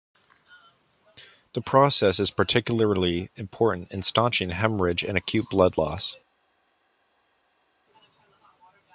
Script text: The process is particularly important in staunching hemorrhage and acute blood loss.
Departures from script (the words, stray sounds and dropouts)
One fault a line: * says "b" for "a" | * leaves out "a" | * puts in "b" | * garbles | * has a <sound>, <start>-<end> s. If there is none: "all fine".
all fine